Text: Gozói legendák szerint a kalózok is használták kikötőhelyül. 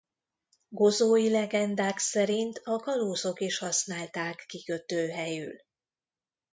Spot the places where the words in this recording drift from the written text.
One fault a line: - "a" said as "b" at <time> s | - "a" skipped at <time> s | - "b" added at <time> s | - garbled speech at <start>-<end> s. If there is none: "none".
none